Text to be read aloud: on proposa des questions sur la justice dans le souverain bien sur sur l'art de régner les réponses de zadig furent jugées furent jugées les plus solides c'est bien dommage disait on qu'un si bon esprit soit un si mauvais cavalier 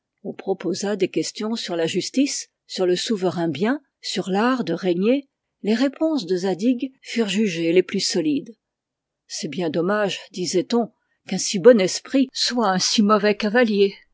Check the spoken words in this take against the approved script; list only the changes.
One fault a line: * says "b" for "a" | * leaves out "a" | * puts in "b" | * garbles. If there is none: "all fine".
* says "sur" for "dans"
* leaves out "sur"
* leaves out "furent jugées"